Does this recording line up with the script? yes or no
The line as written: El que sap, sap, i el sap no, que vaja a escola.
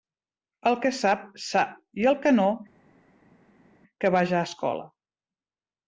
no